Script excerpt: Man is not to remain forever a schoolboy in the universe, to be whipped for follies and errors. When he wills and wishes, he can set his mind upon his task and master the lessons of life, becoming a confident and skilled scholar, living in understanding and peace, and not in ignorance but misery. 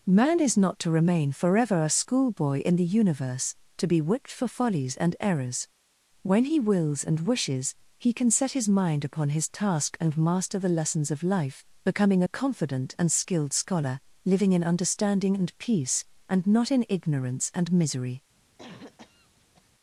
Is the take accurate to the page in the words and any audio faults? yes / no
no